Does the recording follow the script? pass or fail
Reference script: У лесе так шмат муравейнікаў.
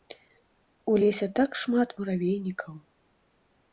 pass